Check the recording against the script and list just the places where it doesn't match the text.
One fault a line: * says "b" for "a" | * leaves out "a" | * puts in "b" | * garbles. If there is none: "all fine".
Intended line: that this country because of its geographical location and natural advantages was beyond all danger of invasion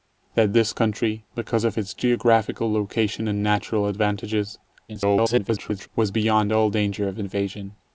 * garbles